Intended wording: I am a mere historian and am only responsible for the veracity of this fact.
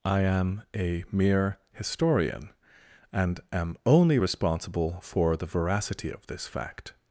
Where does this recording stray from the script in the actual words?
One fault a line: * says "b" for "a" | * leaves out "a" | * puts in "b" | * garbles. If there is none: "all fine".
all fine